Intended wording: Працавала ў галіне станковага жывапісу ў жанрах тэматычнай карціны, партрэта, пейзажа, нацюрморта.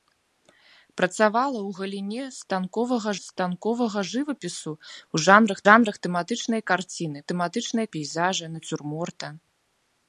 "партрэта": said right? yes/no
no